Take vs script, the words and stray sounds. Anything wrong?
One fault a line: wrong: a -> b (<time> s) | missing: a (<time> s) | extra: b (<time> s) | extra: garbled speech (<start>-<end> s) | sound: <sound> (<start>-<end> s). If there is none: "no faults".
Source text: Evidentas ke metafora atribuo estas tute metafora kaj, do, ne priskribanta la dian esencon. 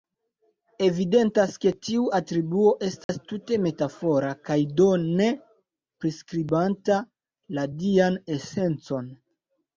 wrong: metafora -> tiu (1.9 s)
sound: dropout (3.0-3.1 s)